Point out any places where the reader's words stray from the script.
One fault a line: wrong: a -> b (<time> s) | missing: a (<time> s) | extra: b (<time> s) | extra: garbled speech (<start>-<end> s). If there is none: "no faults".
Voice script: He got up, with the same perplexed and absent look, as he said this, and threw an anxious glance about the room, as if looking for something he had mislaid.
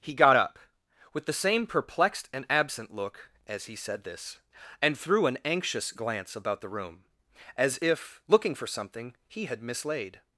no faults